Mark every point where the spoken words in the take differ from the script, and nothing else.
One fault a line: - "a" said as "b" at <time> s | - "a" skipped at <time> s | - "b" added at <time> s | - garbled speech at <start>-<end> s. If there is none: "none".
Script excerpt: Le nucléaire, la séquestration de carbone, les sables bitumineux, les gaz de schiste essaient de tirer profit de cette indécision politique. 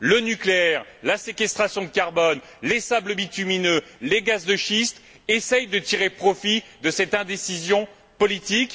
none